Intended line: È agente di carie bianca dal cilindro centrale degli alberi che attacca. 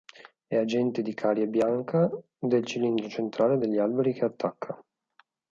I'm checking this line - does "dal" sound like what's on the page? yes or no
no